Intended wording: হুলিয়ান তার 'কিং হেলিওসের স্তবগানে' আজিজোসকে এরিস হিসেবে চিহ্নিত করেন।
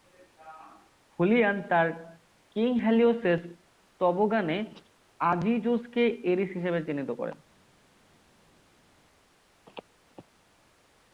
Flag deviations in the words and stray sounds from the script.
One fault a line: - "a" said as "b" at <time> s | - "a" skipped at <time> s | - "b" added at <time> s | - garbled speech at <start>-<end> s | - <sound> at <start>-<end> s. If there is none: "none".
none